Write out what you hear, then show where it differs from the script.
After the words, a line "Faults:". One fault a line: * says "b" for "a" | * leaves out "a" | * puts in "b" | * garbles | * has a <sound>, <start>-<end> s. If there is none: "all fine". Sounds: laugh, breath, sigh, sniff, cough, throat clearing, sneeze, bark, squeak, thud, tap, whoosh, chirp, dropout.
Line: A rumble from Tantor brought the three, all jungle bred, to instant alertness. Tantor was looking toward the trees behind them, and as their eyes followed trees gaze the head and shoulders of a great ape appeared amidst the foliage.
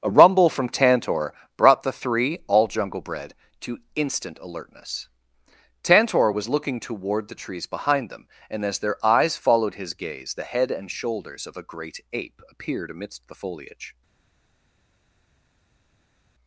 A rumble from Tantor brought the three, all jungle bred, to instant alertness. Tantor was looking toward the trees behind them, and as their eyes followed his gaze the head and shoulders of a great ape appeared amidst the foliage.
Faults:
* says "his" for "trees"